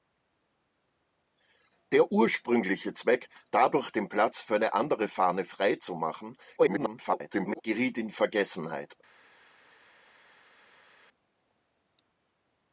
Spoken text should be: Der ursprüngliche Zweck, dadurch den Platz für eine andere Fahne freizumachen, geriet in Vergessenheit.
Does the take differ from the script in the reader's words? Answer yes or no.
yes